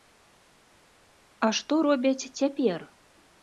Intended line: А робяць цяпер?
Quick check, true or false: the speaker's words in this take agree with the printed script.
false